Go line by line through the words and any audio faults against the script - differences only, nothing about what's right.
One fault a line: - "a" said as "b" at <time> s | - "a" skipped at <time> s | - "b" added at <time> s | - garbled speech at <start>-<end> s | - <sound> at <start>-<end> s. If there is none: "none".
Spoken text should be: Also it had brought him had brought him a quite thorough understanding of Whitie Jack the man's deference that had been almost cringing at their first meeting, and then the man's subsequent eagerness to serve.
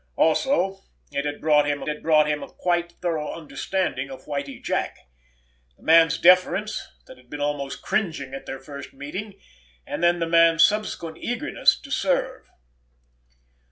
none